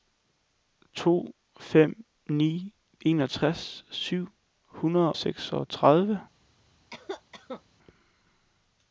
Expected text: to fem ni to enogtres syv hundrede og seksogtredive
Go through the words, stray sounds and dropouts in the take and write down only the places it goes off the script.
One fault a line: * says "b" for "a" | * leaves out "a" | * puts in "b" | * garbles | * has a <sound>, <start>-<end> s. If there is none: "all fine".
* leaves out "to"
* leaves out "og"
* has a cough, 6.9-7.6 s